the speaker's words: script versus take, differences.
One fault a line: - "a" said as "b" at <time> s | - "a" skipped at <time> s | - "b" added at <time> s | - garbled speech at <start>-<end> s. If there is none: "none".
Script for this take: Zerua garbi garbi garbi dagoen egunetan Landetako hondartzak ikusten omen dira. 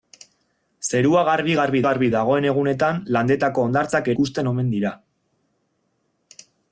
none